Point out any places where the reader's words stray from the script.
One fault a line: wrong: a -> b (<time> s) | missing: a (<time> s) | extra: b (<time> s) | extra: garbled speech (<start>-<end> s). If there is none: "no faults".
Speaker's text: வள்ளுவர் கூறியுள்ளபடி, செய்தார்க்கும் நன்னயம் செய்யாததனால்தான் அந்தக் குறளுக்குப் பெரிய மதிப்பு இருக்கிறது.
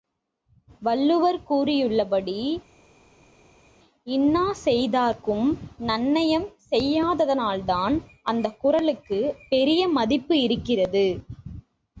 extra: இன்னா (4.1 s)